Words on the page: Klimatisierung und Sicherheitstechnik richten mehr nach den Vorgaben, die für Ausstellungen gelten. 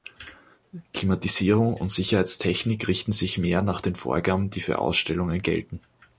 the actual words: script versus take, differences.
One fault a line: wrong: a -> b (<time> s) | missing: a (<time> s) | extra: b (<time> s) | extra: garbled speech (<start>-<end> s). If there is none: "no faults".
extra: sich (3.1 s)